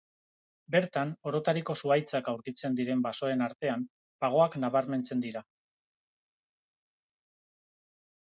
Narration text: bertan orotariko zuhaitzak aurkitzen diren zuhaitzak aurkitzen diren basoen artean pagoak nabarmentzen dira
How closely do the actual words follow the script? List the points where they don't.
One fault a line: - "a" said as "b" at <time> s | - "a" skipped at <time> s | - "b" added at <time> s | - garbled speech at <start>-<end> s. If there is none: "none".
- "zuhaitzak aurkitzen diren" skipped at 3.0 s